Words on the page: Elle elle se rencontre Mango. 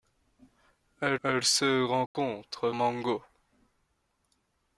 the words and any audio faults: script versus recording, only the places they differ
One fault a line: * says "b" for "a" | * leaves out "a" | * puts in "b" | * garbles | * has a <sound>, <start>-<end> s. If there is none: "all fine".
* has a dropout, 2.1-2.1 s